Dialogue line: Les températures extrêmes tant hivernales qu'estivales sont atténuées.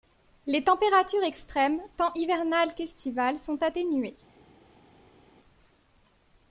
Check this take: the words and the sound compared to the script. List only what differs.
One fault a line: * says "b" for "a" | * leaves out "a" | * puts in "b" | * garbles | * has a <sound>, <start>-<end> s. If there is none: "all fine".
all fine